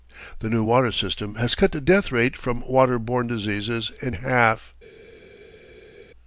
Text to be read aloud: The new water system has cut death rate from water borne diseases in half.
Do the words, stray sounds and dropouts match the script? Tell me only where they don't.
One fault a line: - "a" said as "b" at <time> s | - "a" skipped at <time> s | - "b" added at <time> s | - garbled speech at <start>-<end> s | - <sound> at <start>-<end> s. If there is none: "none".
- "the" added at 1.7 s